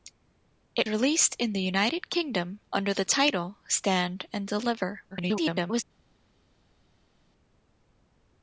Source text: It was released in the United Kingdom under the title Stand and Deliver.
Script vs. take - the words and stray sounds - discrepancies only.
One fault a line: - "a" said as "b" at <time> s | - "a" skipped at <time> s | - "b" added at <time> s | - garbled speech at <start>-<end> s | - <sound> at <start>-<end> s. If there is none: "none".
- "was" skipped at 0.9 s
- garbled speech at 5.1-5.8 s